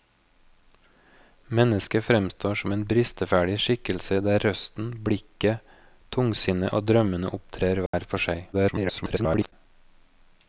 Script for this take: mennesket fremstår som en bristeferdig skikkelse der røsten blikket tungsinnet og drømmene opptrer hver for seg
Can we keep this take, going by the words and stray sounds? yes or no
no